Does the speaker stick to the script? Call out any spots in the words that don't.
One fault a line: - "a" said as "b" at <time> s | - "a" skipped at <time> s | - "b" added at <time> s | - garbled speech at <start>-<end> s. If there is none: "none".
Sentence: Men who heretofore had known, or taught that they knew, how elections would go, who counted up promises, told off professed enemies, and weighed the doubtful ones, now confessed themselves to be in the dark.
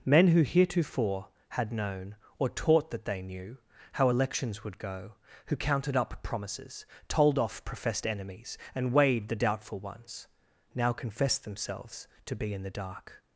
none